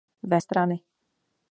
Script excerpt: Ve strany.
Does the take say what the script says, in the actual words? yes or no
yes